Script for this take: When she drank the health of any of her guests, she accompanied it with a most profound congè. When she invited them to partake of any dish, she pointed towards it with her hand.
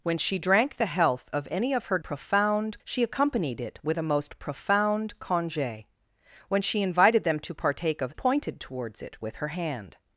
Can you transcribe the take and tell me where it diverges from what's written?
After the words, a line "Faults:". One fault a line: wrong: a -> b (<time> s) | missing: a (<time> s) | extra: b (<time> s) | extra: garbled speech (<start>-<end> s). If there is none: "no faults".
When she drank the health of any of her profound, she accompanied it with a most profound congè. When she invited them to partake of pointed towards it with her hand.
Faults:
wrong: guests -> profound (2.0 s)
missing: any dish she (8.1 s)